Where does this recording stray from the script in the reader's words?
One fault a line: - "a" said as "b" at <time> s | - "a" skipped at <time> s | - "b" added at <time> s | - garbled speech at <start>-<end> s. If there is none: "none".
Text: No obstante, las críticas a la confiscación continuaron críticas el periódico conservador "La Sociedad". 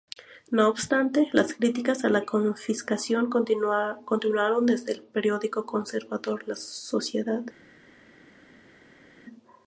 - "críticas" said as "desde" at 4.7 s